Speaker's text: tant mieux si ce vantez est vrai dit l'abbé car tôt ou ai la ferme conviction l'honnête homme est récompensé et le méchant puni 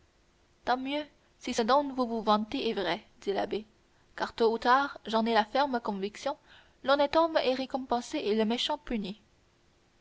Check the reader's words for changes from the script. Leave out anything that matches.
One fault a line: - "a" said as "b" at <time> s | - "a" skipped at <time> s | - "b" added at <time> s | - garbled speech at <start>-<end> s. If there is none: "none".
- "dont vous vous" added at 1.6 s
- "tard j'en" added at 4.6 s